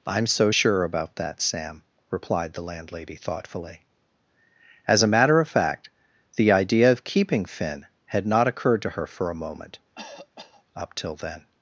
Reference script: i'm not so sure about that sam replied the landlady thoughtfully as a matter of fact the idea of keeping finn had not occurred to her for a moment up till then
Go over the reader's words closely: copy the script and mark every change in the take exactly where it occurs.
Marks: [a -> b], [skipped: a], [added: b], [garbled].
i'm [skipped: not] so sure about that sam replied the landlady thoughtfully as a matter of fact the idea of keeping finn had not occurred to her for a moment up till then